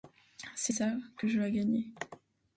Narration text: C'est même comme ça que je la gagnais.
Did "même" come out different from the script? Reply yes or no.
yes